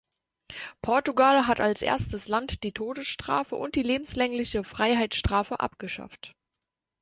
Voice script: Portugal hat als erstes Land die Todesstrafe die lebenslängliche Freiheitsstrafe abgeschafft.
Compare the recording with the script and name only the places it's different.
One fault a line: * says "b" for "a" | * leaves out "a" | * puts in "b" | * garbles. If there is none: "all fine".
* puts in "und"